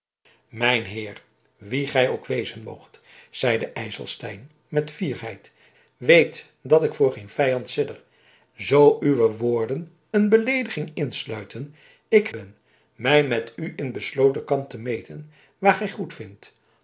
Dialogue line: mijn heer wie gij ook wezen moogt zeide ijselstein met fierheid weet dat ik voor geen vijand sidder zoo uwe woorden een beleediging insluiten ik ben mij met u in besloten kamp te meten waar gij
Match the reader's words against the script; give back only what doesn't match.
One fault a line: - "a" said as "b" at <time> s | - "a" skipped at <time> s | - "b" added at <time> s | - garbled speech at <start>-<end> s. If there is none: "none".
none